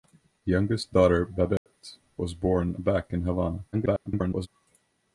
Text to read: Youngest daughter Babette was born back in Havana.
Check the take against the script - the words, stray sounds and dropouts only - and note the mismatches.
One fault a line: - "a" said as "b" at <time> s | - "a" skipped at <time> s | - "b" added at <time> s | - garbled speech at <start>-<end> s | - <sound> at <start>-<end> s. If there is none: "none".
- dropout at 1.6-1.7 s
- garbled speech at 3.7-4.5 s